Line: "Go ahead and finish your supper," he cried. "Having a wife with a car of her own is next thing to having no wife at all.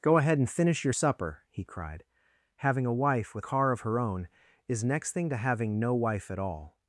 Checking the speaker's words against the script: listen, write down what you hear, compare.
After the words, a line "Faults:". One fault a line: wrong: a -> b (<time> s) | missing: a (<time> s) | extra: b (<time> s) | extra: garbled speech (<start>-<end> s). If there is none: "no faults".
"Go ahead and finish your supper," he cried. "Having a wife with car of her own is next thing to having no wife at all.
Faults:
missing: a (3.5 s)